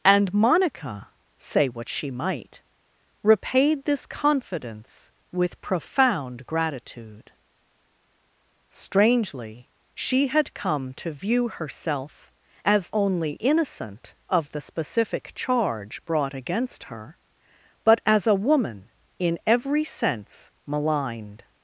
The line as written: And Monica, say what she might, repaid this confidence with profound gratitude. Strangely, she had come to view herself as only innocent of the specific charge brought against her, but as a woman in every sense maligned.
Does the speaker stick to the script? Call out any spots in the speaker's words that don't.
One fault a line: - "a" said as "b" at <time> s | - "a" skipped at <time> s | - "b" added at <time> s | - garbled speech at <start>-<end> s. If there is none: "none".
none